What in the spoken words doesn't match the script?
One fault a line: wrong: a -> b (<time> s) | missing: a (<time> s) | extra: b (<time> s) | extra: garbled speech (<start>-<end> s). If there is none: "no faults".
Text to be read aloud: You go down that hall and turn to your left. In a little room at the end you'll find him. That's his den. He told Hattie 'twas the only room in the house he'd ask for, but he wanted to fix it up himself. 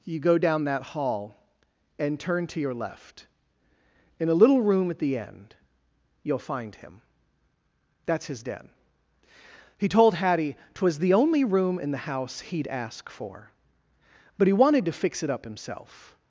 no faults